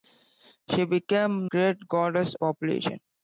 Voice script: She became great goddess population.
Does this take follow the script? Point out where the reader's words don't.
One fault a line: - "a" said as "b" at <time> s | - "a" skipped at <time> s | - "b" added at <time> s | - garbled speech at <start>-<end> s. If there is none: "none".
none